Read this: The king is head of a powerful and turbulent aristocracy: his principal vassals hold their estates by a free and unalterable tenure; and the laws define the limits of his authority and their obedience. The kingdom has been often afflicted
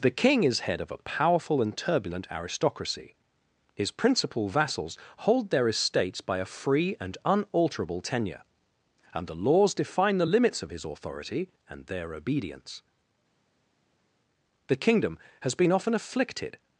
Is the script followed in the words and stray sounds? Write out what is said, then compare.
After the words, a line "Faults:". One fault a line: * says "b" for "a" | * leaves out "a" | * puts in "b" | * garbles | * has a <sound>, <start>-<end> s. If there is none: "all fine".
The king is head of a powerful and turbulent aristocracy: his principal vassals hold their estates by a free and unalterable tenure; and the laws define the limits of his authority and their obedience. The kingdom has been often afflicted
Faults:
all fine